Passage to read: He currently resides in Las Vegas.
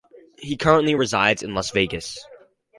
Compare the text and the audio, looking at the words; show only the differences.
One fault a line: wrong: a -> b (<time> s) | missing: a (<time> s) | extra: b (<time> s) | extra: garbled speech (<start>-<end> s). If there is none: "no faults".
no faults